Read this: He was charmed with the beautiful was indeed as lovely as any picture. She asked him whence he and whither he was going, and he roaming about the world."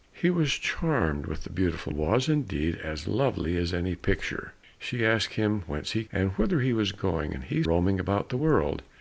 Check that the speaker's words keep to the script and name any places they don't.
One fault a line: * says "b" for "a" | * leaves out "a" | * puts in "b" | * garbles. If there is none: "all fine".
all fine